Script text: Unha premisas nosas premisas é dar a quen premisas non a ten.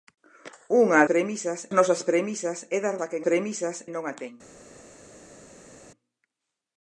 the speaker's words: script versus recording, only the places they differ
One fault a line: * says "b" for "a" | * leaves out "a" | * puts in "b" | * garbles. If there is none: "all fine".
all fine